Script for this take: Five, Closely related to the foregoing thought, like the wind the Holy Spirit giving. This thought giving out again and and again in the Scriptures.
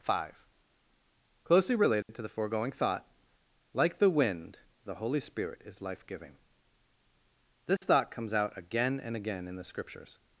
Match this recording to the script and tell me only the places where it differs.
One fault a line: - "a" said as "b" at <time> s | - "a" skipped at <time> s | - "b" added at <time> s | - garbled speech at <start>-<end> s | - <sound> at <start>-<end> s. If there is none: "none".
- dropout at 2.0-2.1 s
- "is life" added at 5.6 s
- dropout at 7.8-7.8 s
- "giving" said as "comes" at 8.1 s
- "and" skipped at 9.2 s